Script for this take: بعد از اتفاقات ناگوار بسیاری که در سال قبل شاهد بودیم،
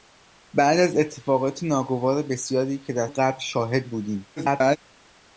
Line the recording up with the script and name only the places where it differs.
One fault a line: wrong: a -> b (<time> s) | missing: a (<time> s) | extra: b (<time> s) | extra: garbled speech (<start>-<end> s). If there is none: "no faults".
missing: سال (3.1 s)
extra: garbled speech (4.4-4.8 s)